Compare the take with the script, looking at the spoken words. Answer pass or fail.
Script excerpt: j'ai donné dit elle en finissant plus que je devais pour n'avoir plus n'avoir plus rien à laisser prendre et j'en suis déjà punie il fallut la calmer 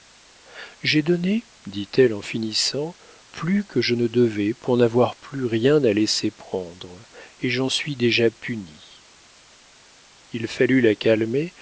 fail